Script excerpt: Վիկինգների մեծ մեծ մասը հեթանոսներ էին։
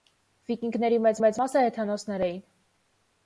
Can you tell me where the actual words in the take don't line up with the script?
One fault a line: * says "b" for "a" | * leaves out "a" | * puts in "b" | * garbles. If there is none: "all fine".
all fine